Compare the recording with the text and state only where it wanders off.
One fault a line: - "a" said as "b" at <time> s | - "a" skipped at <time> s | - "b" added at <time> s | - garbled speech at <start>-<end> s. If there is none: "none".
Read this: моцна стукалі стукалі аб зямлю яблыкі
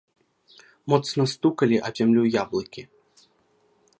- "стукалі" skipped at 1.8 s